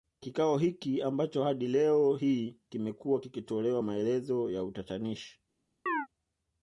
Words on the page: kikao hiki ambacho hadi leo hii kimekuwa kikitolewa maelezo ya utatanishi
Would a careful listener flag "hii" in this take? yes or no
no